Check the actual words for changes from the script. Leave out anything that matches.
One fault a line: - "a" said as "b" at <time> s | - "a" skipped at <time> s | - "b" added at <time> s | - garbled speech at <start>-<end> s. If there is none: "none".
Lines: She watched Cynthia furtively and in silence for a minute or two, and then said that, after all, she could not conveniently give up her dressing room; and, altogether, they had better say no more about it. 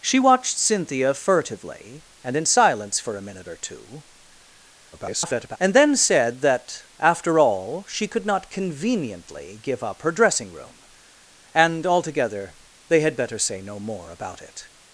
- garbled speech at 4.9-5.6 s